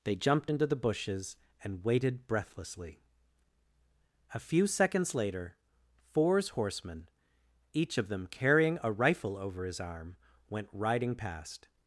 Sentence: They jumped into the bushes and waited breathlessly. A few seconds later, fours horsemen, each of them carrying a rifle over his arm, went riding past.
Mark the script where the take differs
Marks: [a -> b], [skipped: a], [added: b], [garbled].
They jumped into the bushes and waited breathlessly. A few seconds later, fours horsemen, each of them carrying a rifle over his arm, went riding past.